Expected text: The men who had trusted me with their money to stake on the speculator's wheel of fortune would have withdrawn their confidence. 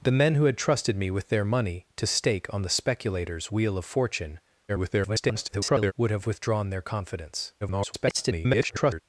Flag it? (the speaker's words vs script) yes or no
yes